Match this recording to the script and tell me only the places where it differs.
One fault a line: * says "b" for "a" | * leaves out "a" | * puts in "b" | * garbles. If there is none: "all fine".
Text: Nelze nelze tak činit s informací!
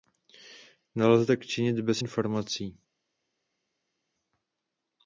* leaves out "nelze"
* says "bez" for "s"